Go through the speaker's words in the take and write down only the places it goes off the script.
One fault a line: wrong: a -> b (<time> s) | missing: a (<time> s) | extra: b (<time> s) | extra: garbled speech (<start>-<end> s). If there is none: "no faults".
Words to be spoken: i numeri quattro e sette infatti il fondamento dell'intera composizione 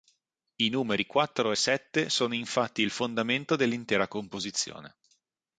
extra: sono (2.1 s)